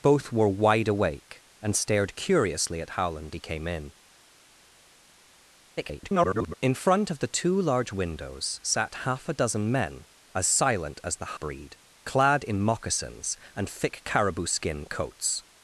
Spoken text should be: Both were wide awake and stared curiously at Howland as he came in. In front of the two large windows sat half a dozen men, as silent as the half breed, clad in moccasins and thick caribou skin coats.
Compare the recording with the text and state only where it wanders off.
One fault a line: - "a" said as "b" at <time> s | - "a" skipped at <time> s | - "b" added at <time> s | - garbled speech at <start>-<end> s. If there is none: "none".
- "as" skipped at 3.4 s
- garbled speech at 5.8-6.5 s
- "half" skipped at 11.3 s